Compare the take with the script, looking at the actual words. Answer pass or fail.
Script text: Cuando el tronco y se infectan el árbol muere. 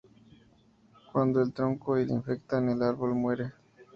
pass